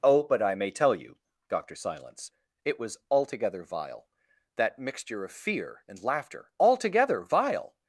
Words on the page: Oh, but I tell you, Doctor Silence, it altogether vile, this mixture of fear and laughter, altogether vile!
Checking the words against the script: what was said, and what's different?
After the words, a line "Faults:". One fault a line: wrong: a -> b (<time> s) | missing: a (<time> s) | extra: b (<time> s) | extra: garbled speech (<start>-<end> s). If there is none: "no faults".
Oh, but I may tell you, Doctor Silence, it was altogether vile, that mixture of fear and laughter, altogether vile!
Faults:
extra: may (0.6 s)
extra: was (2.8 s)
wrong: this -> that (4.5 s)